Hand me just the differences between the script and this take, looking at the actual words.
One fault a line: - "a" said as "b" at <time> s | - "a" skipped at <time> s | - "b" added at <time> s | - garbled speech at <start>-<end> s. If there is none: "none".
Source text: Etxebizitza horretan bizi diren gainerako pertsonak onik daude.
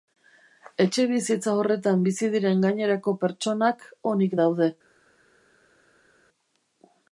none